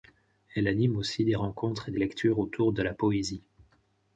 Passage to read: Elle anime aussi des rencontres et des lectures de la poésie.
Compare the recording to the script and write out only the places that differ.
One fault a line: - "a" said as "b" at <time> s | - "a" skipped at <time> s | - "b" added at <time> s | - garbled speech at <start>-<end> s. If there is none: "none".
- "autour" added at 2.4 s